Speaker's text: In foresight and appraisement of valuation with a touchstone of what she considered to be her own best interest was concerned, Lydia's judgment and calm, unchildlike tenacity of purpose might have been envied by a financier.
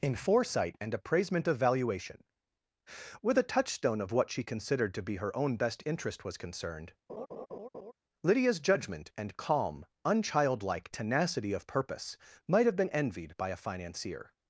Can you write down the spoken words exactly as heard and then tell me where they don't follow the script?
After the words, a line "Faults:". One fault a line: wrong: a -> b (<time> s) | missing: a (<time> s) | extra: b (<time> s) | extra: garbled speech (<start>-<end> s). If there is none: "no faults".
In foresight and appraisement of valuation with a touchstone of what she considered to be her own best interest was concerned, Lydia's judgment and calm, unchildlike tenacity of purpose might have been envied by a financier.
Faults:
no faults